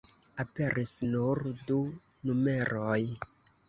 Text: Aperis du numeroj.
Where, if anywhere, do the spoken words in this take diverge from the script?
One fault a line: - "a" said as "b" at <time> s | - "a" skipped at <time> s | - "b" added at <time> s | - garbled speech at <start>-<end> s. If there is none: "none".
- "nur" added at 1.1 s